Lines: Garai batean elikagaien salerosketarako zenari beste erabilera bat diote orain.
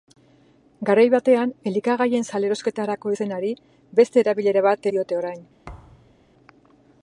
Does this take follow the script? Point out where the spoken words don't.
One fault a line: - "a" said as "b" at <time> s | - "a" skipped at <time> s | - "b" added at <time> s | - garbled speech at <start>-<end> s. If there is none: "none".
none